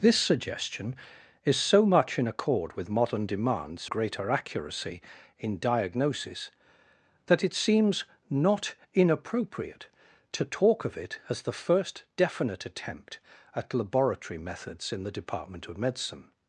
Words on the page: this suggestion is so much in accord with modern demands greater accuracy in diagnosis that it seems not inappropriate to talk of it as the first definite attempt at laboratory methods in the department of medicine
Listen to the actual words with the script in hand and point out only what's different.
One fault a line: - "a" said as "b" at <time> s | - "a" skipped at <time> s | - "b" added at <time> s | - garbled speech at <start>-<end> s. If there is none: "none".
none